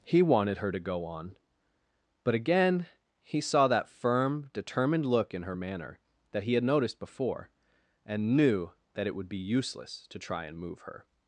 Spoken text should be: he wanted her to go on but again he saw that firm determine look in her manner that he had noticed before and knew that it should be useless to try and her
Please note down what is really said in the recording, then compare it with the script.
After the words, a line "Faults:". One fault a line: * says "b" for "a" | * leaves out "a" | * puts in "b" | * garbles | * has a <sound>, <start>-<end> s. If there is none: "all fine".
he wanted her to go on but again he saw that firm determined look in her manner that he had noticed before and knew that it would be useless to try and move her
Faults:
* says "determined" for "determine"
* says "would" for "should"
* puts in "move"